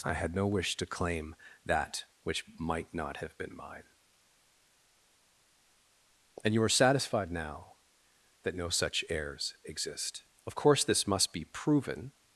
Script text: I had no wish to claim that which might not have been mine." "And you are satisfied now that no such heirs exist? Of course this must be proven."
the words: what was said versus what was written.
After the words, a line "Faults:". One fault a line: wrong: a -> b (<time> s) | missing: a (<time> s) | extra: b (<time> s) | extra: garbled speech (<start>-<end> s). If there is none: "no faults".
I had no wish to claim that which might not have been mine." "And you are satisfied now that no such heirs exist? Of course this must be proven."
Faults:
no faults